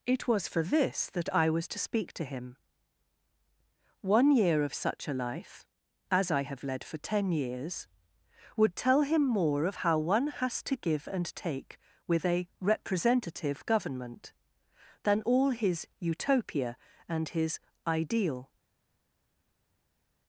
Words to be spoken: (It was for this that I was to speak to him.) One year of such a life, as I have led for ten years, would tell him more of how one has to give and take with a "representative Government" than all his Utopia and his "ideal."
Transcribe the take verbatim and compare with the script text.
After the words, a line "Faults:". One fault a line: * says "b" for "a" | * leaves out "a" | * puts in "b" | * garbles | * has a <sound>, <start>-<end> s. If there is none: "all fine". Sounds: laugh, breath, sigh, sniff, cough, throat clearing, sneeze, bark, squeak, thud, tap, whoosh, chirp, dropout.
(It was for this that I was to speak to him.) One year of such a life, as I have led for ten years, would tell him more of how one has to give and take with a "representative Government" than all his Utopia and his "ideal."
Faults:
all fine